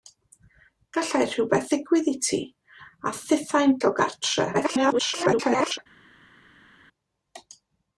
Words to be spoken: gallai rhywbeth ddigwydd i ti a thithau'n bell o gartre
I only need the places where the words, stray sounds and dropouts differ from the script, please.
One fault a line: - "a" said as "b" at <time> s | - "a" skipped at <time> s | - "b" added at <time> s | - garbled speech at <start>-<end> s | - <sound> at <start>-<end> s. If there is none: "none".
- "bell" skipped at 3.7 s
- garbled speech at 4.5-5.8 s